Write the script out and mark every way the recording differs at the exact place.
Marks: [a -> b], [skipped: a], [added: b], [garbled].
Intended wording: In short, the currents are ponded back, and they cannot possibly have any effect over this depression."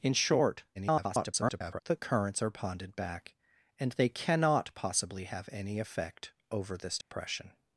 In short, [garbled] the currents are ponded back, and they cannot possibly have any effect over this depression."